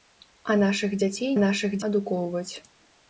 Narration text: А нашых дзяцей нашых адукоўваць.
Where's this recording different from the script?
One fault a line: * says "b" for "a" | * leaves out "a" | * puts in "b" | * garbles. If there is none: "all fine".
all fine